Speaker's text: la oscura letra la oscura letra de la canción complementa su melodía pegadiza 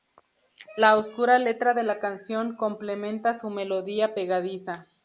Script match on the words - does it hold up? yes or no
no